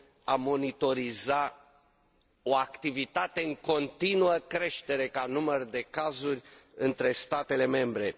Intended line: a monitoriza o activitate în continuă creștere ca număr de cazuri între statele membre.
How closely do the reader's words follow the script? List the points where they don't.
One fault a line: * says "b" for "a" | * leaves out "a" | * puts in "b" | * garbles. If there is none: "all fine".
all fine